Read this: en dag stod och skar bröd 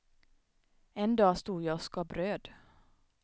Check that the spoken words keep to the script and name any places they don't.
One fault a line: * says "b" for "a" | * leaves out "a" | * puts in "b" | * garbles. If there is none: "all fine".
* puts in "jag"